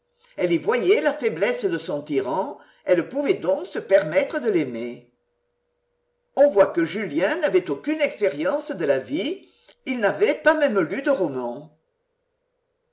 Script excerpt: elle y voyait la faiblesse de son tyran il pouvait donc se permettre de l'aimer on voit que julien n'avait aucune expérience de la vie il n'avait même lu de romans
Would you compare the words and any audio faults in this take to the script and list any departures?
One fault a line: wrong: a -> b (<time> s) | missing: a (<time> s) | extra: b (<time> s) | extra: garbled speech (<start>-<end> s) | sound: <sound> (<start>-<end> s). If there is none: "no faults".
wrong: il -> elle (2.9 s)
extra: pas (10.3 s)